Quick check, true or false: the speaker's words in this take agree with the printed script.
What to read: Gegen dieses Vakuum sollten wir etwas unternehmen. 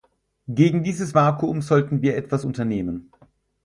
true